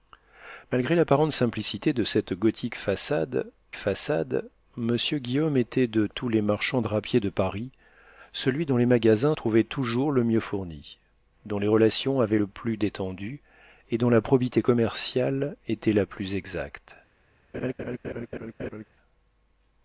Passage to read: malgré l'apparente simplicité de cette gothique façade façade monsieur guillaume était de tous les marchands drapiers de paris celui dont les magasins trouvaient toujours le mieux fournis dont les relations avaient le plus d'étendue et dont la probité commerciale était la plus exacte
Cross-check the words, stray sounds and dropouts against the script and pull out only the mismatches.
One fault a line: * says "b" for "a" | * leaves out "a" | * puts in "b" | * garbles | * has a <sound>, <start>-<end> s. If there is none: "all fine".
* has a laugh, 17.5-18.8 s